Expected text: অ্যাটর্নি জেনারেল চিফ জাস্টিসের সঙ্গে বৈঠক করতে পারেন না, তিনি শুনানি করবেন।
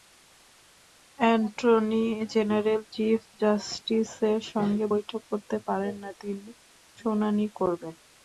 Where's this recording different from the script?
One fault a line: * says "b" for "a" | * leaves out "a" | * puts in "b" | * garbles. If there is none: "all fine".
all fine